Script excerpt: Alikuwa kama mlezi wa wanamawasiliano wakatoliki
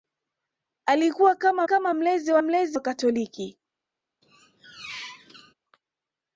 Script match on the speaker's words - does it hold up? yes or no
no